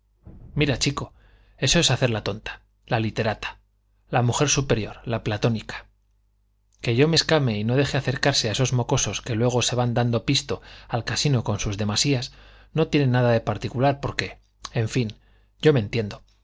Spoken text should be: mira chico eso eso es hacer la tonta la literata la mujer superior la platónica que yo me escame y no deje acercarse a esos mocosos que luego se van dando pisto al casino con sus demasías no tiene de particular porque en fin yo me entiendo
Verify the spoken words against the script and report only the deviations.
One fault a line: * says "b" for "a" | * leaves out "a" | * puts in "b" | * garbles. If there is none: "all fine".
* leaves out "eso"
* puts in "nada"